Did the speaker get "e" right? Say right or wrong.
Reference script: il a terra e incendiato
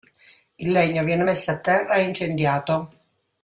right